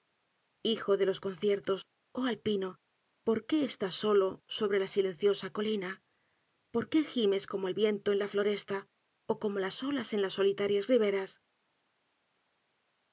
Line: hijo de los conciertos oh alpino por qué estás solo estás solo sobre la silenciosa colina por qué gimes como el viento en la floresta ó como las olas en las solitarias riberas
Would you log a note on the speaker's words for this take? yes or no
yes